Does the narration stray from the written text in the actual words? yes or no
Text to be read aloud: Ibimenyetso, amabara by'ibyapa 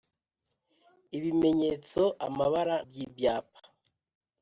no